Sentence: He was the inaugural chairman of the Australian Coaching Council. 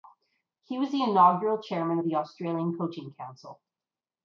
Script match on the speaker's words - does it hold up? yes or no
yes